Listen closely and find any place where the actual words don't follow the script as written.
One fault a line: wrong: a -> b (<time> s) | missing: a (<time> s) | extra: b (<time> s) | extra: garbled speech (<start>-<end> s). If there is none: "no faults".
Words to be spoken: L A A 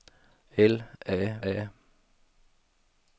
no faults